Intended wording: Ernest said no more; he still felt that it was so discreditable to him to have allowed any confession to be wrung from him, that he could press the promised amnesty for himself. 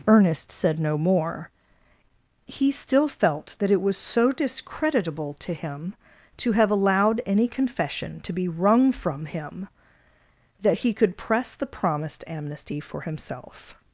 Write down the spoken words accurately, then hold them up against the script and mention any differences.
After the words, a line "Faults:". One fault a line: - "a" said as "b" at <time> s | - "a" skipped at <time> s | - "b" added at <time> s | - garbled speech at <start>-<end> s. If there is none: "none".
Ernest said no more; he still felt that it was so discreditable to him to have allowed any confession to be wrung from him, that he could press the promised amnesty for himself.
Faults:
none